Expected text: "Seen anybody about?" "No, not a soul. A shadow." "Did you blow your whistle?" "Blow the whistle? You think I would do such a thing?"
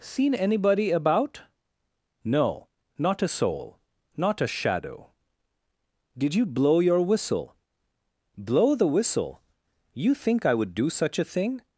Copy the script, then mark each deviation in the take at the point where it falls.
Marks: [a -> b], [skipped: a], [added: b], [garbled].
"Seen anybody about?" "No, not a soul. [added: Not] A shadow." "Did you blow your whistle?" "Blow the whistle? You think I would do such a thing?"